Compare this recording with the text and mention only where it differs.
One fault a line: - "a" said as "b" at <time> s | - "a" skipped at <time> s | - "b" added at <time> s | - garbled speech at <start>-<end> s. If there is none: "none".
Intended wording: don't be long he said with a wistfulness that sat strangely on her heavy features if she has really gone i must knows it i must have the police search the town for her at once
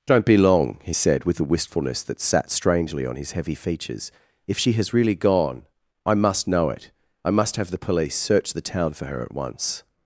- "her" said as "his" at 3.1 s
- "knows" said as "know" at 6.5 s